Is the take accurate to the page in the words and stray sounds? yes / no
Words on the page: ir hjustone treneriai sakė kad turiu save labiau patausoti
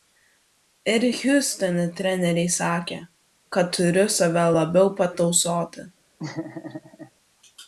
no